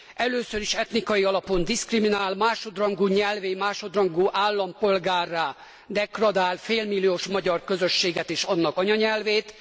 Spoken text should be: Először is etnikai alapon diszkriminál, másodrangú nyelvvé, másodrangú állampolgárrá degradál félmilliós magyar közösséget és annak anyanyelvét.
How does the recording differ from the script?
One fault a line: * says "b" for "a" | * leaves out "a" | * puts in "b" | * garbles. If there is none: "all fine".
all fine